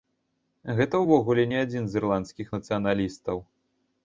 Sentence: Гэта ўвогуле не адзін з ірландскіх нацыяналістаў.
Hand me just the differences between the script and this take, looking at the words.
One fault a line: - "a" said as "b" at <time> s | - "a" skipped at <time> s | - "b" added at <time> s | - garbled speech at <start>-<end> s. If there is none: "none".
none